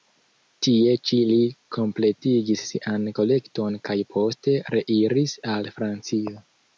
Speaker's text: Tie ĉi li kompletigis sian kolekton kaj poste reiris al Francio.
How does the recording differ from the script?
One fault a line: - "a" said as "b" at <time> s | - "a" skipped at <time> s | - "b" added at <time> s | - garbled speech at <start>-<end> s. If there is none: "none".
none